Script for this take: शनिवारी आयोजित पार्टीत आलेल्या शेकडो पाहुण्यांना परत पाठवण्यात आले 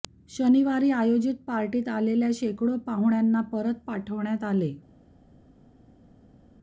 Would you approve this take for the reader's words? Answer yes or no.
yes